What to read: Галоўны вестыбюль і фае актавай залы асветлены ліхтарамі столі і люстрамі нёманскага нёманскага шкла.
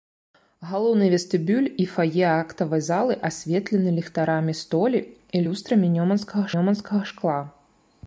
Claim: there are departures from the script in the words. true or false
false